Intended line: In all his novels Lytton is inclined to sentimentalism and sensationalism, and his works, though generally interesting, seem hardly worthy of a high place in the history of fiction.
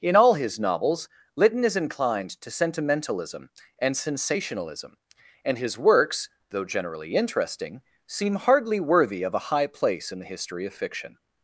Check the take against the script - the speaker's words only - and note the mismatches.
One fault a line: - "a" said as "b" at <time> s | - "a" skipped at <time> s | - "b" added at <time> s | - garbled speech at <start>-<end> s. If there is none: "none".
none